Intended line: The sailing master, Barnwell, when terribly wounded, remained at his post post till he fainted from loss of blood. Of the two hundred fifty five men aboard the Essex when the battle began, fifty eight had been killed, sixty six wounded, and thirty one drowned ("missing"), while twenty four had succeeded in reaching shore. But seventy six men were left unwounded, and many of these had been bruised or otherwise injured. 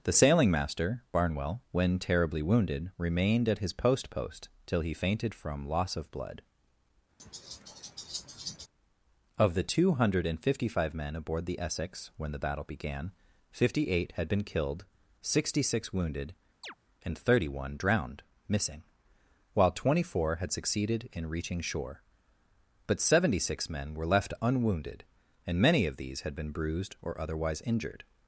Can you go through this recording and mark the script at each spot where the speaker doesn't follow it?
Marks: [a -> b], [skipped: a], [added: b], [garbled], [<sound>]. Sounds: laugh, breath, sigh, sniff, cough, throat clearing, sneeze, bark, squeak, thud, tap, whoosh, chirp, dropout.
The sailing master, Barnwell, when terribly wounded, remained at his post post till he fainted from loss of blood. [laugh] Of the two hundred fifty five men aboard the Essex when the battle began, fifty eight had been killed, sixty six wounded, [chirp] and thirty one drowned ("missing"), while twenty four had succeeded in reaching shore. But seventy six men were left unwounded, and many of these had been bruised or otherwise injured.